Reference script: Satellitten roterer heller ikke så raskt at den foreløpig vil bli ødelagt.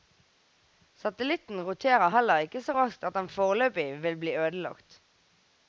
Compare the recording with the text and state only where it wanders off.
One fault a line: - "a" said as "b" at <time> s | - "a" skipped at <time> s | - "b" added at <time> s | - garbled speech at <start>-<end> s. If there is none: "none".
none